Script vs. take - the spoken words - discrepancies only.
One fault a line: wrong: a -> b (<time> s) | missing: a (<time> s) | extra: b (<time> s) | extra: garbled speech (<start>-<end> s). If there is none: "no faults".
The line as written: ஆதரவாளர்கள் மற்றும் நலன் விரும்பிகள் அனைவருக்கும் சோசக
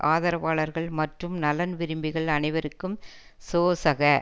no faults